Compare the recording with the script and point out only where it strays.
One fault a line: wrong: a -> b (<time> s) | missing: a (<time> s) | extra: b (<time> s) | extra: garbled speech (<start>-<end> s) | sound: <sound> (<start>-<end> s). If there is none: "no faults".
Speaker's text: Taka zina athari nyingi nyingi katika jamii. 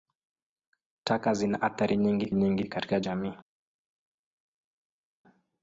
no faults